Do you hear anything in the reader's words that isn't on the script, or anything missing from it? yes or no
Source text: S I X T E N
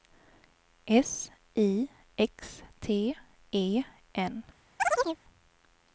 no